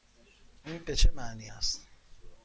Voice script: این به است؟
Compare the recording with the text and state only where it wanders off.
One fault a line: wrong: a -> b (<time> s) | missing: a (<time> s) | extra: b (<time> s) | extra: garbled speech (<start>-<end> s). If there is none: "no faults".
extra: چه معنی (0.9 s)